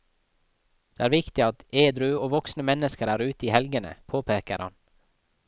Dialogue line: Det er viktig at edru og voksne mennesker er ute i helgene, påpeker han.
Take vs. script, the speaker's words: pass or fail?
pass